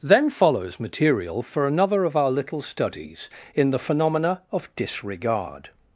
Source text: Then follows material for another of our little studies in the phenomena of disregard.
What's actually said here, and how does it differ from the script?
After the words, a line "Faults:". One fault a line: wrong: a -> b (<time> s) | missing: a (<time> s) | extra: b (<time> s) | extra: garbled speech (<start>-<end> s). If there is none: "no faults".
Then follows material for another of our little studies in the phenomena of disregard.
Faults:
no faults